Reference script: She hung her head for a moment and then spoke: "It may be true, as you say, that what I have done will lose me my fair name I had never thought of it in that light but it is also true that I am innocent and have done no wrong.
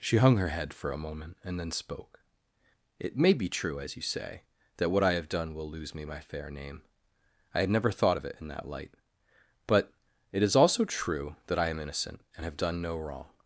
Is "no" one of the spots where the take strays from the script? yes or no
no